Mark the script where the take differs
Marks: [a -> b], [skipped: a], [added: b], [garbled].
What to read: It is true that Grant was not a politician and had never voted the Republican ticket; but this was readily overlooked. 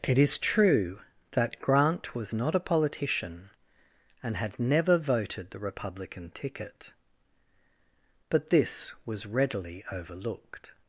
It is true that Grant was not a politician and had never voted the Republican ticket; but this was readily overlooked.